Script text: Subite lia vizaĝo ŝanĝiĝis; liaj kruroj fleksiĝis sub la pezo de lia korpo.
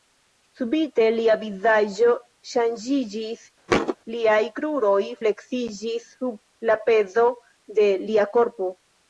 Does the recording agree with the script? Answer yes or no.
yes